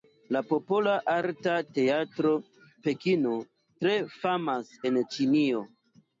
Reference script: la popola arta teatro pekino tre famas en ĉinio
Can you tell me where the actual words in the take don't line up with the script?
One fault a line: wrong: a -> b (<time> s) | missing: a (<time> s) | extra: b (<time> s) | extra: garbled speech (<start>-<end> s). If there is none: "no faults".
no faults